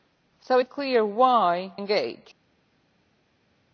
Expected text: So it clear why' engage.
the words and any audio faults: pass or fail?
pass